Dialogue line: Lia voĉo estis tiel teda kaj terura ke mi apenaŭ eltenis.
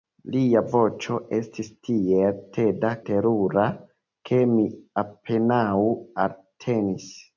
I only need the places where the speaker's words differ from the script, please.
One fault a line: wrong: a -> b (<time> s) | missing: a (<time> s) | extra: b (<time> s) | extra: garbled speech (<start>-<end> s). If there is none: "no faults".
missing: kaj (2.9 s)